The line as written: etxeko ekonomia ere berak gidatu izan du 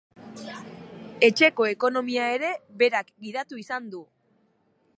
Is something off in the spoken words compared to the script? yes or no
no